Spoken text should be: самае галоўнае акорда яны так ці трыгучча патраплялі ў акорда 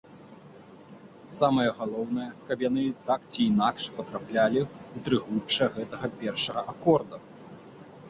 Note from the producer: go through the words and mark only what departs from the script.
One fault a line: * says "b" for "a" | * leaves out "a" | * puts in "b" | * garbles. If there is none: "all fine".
* says "каб" for "акорда"
* says "інакш" for "трыгучча"
* puts in "трыгучча гэтага першага"